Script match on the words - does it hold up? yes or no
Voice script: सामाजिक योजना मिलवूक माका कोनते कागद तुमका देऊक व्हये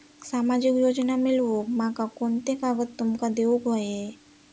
yes